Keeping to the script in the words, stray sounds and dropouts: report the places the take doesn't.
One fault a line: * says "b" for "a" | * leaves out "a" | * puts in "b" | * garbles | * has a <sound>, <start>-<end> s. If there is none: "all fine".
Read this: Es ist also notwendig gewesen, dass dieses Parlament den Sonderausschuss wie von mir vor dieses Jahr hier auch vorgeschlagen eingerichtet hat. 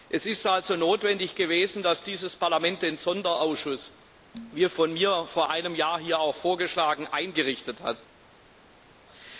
* says "einem" for "dieses"